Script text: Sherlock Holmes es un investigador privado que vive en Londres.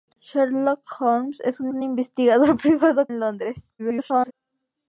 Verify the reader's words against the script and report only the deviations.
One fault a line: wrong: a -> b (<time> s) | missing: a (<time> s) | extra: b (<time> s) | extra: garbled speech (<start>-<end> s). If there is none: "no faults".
extra: un (1.7 s)
missing: que vive (3.1 s)
extra: garbled speech (3.8-4.3 s)